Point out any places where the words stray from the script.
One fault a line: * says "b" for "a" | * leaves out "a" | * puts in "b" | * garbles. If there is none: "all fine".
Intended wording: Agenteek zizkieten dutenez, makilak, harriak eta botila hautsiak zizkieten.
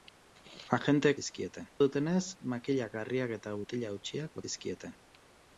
all fine